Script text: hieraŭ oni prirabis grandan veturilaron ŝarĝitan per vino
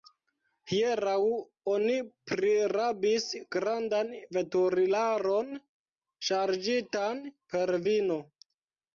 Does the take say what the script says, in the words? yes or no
yes